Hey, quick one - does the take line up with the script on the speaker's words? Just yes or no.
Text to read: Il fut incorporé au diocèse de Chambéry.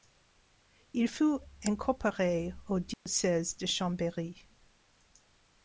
yes